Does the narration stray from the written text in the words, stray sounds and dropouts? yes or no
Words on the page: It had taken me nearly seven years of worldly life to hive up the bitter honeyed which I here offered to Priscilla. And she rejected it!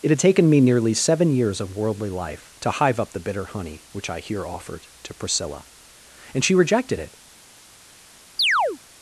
yes